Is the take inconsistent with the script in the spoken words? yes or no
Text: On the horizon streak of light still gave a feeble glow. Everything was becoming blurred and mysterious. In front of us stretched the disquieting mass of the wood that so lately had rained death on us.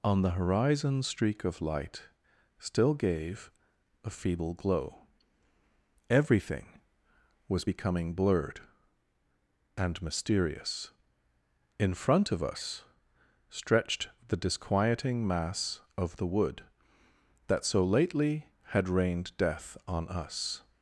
no